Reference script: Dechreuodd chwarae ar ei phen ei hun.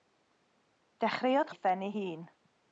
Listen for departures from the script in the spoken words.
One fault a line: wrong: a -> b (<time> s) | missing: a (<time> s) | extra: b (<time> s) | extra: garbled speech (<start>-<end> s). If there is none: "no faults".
missing: chwarae ar (1.5 s)